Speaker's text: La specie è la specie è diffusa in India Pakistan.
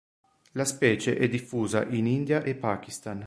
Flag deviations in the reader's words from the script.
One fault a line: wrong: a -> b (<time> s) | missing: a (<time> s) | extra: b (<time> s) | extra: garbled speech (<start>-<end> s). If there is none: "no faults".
missing: la specie è (1.3 s)
extra: e (2.4 s)